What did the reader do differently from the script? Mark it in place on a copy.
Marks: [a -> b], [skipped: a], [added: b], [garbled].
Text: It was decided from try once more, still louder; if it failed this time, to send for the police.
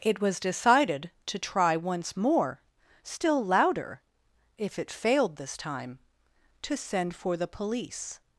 It was decided [from -> to] try once more, still louder; if it failed this time, to send for the police.